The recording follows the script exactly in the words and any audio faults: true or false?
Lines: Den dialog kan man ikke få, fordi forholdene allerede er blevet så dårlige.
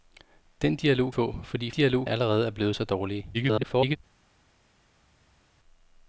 false